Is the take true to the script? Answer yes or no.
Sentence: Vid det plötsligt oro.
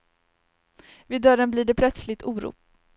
no